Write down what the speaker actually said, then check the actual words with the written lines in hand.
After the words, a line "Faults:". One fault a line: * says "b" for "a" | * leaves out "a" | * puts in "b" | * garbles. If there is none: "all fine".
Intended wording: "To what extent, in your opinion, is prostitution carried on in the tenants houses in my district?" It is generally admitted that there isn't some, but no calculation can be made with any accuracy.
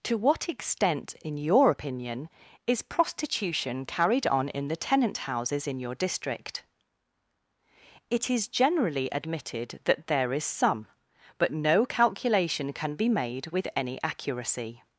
"To what extent, in your opinion, is prostitution carried on in the tenant houses in your district?" It is generally admitted that there is some, but no calculation can be made with any accuracy.
Faults:
* says "tenant" for "tenants"
* says "your" for "my"
* says "is" for "isn't"